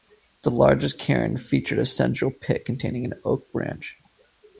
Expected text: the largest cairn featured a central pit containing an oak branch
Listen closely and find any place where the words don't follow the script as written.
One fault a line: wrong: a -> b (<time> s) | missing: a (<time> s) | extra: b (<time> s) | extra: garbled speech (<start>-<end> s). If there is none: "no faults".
no faults